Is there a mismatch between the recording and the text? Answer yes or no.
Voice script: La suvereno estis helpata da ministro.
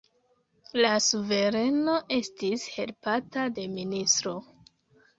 yes